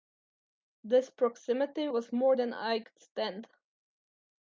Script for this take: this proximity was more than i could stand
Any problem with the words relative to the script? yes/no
no